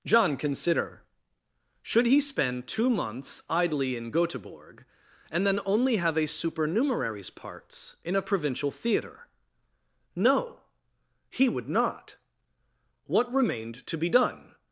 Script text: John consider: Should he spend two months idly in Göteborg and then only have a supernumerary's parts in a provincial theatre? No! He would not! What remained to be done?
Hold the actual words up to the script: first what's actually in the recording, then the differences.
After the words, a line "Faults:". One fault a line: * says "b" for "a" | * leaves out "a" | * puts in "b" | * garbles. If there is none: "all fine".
John consider: Should he spend two months idly in Göteborg and then only have a supernumerary's parts in a provincial theatre? No! He would not! What remained to be done?
Faults:
all fine